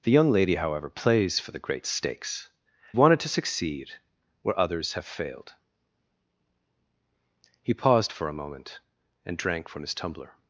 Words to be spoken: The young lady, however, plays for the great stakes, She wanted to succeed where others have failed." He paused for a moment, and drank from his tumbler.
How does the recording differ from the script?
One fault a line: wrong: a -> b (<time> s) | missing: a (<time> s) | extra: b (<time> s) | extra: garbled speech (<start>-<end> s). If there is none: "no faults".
missing: She (2.5 s)